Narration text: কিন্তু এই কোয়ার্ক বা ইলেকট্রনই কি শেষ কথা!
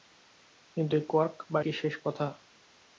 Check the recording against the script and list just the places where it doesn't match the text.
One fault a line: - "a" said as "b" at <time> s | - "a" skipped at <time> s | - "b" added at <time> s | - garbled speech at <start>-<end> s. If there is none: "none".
- "ইলেকট্রনই" skipped at 1.6 s